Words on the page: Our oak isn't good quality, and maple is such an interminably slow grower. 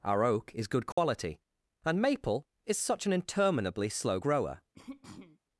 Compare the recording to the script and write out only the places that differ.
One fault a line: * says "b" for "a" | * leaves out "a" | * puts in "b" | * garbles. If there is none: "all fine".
* says "is" for "isn't"